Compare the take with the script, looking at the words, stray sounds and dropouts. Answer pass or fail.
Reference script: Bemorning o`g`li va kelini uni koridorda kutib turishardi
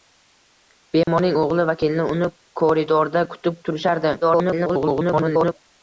fail